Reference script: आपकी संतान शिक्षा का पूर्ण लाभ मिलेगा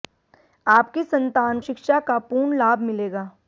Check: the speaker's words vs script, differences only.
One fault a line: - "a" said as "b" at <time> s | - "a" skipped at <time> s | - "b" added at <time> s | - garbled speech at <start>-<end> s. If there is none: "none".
none